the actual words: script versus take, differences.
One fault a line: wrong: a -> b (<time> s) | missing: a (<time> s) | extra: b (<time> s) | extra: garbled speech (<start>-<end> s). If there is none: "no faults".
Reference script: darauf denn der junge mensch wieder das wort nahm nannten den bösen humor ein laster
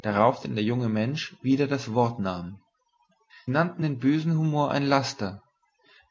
no faults